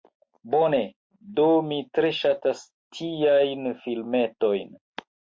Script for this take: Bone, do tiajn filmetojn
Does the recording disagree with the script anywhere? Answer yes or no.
yes